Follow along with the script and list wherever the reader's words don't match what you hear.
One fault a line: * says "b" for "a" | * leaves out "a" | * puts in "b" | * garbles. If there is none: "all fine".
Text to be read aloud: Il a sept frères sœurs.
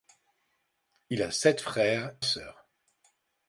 all fine